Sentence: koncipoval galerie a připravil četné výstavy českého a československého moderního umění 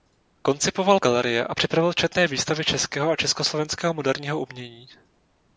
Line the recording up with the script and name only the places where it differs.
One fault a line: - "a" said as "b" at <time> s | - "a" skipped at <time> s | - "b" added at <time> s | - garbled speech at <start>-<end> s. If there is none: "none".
none